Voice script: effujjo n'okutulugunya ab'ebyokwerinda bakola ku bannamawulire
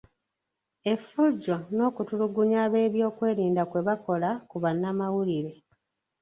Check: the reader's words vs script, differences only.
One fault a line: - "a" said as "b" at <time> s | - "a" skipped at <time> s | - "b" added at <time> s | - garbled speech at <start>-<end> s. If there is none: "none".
- "kwe" added at 3.7 s